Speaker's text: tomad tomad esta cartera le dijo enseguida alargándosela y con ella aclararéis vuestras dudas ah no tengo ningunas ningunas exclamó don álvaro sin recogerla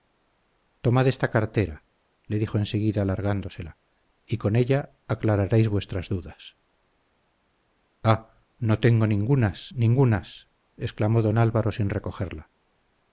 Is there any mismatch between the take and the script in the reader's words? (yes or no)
yes